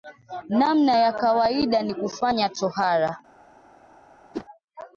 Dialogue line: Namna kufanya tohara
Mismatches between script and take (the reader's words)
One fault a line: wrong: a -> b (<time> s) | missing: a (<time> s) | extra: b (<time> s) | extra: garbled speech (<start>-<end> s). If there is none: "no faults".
extra: ya kawaida ni (1.0 s)